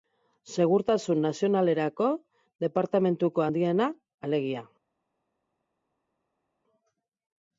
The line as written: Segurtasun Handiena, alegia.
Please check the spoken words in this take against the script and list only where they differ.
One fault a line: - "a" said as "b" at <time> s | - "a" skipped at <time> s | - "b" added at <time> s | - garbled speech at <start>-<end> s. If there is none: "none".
- "Nazionalerako Departamentuko" added at 1.2 s